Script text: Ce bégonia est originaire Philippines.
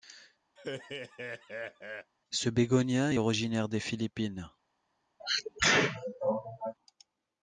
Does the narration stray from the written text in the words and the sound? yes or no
yes